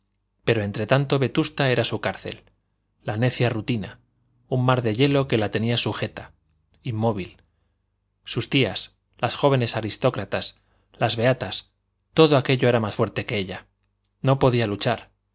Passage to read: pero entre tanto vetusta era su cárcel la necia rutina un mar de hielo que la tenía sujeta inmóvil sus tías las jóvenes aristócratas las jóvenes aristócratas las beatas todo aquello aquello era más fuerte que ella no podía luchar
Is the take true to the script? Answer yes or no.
no